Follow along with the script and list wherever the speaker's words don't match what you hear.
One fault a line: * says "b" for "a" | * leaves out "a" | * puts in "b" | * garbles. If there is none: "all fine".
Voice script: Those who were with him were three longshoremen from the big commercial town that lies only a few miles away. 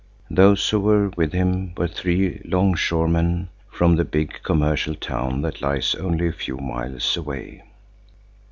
all fine